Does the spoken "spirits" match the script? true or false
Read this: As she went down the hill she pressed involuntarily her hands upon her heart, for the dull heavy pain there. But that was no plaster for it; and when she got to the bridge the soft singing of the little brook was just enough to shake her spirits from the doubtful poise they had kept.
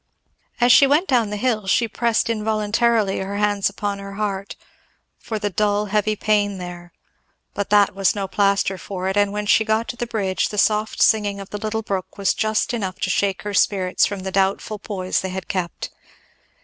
true